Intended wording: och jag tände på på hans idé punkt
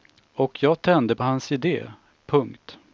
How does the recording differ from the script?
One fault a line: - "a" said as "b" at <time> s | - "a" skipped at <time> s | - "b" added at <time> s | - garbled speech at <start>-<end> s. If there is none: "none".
- "på" skipped at 1.2 s